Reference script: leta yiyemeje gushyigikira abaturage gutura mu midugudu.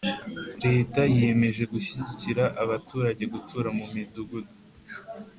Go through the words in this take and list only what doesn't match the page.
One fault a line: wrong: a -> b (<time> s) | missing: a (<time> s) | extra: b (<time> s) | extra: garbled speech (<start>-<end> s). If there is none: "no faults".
no faults